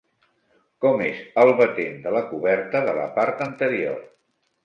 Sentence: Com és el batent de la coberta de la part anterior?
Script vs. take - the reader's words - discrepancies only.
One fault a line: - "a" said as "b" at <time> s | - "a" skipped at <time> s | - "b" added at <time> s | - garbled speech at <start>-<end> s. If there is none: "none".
none